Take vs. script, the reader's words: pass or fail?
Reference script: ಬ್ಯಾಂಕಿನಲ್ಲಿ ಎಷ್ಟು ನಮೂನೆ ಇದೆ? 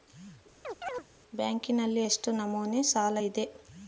fail